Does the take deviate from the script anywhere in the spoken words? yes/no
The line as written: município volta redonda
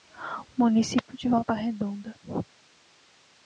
yes